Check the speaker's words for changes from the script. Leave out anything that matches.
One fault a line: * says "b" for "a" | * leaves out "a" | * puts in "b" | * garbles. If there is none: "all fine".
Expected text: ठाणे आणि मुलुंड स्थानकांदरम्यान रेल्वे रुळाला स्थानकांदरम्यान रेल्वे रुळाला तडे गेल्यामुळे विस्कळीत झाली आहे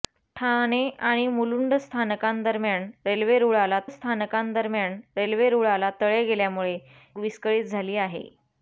all fine